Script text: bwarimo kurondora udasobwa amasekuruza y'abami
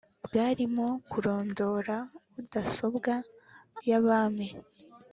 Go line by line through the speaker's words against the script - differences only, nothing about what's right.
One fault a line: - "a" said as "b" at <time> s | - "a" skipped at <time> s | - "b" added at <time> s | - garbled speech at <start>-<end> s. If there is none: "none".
- "amasekuruza" skipped at 3.1 s